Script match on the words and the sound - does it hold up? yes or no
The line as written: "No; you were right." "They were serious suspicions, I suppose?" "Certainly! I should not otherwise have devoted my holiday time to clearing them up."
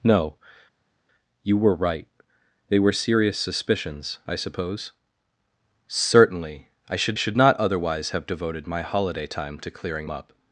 no